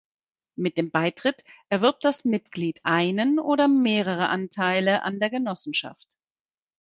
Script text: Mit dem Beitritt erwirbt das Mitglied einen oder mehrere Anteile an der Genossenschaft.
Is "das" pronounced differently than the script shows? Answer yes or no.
no